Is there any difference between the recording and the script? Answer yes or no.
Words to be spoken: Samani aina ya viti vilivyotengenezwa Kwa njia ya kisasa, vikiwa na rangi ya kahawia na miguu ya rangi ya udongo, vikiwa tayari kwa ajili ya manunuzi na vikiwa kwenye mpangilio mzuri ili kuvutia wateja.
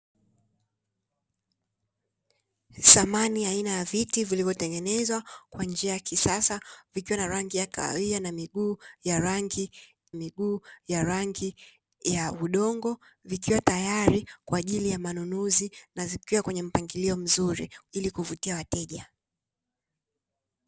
yes